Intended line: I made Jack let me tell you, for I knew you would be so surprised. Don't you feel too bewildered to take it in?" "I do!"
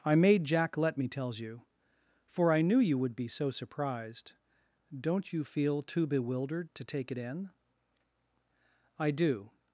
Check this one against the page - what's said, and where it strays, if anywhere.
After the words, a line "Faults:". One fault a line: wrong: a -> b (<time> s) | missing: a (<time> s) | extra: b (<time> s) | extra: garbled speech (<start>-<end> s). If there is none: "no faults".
I made Jack let me tells you, for I knew you would be so surprised. Don't you feel too bewildered to take it in?" "I do!"
Faults:
wrong: tell -> tells (1.1 s)